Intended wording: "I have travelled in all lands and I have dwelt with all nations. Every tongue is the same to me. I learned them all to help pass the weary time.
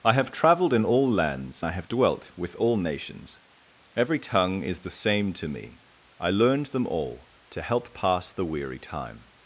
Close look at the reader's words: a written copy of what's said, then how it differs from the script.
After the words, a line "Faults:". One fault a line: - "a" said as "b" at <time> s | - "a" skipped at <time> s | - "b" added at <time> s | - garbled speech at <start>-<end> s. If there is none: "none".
"I have travelled in all lands I have dwelt with all nations. Every tongue is the same to me. I learned them all to help pass the weary time.
Faults:
- "and" skipped at 1.6 s